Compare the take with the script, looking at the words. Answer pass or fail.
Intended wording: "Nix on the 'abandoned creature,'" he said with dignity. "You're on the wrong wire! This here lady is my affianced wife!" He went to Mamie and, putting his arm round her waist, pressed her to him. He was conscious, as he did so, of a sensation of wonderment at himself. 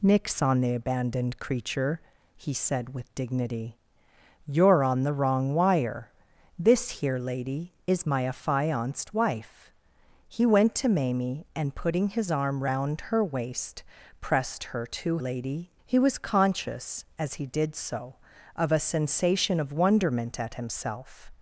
fail